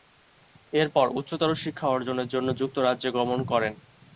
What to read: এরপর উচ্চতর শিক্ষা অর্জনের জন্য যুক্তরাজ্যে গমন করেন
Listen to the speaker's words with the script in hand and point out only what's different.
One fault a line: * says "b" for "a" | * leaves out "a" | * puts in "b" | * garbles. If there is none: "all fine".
all fine